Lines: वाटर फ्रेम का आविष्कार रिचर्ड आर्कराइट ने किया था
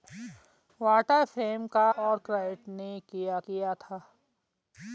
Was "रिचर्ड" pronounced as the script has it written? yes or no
no